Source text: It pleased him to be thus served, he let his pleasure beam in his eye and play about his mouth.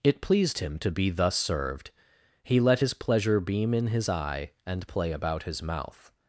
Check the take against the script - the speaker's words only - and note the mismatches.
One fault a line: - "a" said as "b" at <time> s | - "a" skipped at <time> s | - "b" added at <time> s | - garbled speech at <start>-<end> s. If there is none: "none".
none